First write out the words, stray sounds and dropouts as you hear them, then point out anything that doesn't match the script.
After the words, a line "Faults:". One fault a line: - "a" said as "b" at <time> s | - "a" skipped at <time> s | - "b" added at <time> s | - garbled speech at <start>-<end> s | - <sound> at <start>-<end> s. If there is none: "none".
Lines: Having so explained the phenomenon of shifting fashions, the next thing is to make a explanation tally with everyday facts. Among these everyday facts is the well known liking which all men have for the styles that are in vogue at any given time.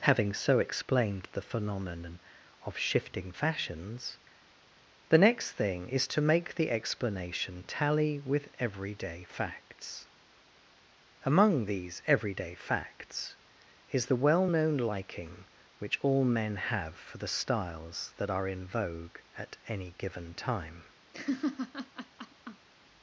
Having so explained the phenomenon of shifting fashions, the next thing is to make the explanation tally with everyday facts. Among these everyday facts is the well known liking which all men have for the styles that are in vogue at any given time.
Faults:
- "a" said as "the" at 6.5 s
- laugh at 21.1-22.7 s